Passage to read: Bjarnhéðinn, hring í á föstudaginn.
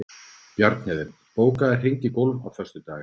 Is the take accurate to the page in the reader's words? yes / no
no